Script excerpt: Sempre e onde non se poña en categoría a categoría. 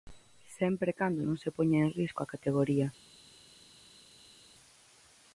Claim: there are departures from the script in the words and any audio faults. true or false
true